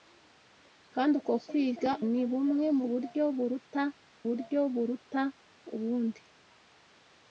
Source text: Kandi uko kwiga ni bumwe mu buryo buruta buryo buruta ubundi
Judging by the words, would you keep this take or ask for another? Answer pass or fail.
pass